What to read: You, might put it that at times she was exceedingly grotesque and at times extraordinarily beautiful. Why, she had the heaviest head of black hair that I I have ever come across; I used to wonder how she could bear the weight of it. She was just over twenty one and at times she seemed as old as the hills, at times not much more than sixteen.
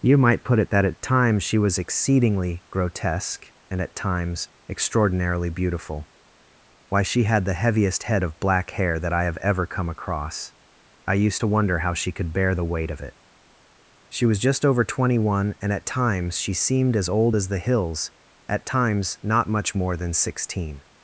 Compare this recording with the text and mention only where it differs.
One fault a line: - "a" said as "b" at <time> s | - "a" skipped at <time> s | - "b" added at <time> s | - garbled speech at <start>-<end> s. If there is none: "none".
- "I" skipped at 9.2 s